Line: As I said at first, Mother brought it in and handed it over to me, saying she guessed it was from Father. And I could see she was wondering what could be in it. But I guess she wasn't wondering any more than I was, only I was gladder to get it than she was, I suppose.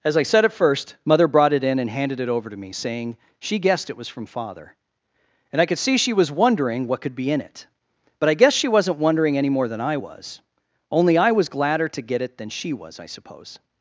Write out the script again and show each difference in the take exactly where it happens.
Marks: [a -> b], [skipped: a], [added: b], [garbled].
As I said at first, Mother brought it in and handed it over to me, saying she guessed it was from Father. And I could see she was wondering what could be in it. But I guess she wasn't wondering any more than I was, only I was gladder to get it than she was, I suppose.